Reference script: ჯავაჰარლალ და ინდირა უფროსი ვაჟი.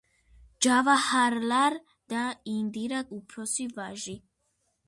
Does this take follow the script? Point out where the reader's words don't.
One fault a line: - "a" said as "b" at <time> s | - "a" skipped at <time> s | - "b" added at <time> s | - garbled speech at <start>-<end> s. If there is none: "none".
none